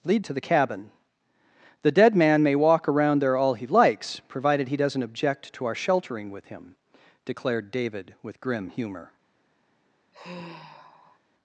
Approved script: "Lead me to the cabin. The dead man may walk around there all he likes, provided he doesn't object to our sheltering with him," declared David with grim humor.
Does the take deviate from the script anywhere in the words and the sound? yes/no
yes